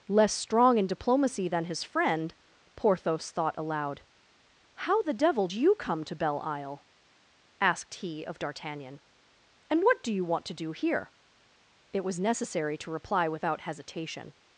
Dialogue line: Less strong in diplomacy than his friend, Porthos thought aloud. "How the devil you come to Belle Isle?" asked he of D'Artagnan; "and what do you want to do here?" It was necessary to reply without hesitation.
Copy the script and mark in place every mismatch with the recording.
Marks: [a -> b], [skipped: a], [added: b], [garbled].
Less strong in diplomacy than his friend, Porthos thought aloud. "How the devil you come to Belle Isle?" asked he of D'Artagnan; "and what do you want to do here?" It was necessary to reply without hesitation.